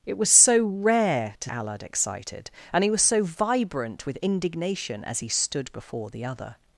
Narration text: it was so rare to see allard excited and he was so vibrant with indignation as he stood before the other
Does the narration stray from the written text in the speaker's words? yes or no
yes